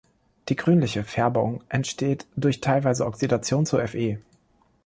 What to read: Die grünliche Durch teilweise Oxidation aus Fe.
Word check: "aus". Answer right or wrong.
wrong